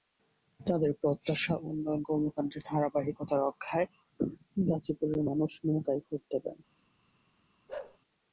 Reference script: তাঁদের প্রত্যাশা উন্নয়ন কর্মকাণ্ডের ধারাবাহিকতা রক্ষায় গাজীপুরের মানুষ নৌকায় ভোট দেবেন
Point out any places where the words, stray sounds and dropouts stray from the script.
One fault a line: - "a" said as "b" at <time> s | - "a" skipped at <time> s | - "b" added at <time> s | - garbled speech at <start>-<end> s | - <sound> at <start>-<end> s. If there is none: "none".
- bark at 7.7-8.0 s